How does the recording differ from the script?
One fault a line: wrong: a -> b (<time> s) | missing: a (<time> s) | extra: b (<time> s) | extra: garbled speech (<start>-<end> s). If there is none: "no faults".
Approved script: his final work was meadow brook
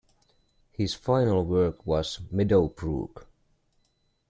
no faults